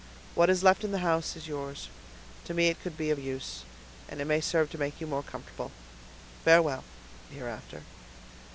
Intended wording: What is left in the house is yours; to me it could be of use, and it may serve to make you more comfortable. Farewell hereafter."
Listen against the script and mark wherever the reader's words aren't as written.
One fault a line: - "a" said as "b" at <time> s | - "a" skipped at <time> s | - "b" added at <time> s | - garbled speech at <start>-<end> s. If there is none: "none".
none